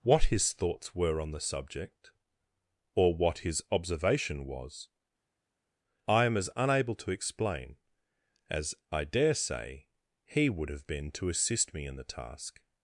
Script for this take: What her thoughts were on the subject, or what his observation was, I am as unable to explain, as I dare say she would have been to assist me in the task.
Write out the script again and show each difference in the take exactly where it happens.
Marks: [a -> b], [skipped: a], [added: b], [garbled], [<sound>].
What [her -> his] thoughts were on the subject, or what his observation was, I am as unable to explain, as I dare say [she -> he] would have been to assist me in the task.